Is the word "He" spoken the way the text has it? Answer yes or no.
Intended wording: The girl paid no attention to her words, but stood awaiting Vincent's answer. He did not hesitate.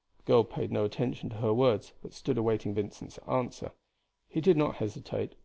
yes